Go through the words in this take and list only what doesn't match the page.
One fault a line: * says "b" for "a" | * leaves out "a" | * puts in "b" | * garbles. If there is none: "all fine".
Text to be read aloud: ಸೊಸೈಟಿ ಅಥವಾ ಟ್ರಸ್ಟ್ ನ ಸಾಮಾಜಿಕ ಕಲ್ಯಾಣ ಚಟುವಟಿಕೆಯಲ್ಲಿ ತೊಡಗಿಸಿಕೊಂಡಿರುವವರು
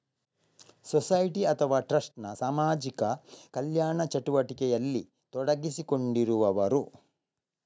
all fine